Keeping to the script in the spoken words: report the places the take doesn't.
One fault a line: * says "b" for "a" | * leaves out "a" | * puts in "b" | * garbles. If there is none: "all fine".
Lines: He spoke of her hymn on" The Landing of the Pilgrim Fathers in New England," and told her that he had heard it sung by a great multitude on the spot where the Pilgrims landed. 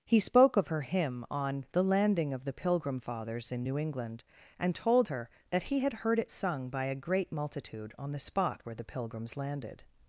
all fine